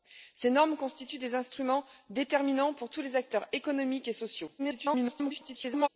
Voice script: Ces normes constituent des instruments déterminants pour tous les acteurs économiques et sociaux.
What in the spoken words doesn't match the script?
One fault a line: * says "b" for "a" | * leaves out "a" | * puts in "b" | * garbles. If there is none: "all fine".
* garbles